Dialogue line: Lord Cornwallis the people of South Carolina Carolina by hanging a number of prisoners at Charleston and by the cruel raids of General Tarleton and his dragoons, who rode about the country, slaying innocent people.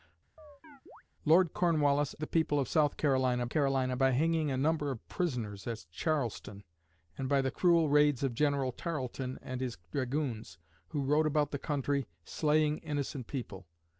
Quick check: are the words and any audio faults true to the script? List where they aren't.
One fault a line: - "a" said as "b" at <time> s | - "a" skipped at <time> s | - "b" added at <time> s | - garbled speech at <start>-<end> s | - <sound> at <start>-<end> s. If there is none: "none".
- chirp at 0.4-1.0 s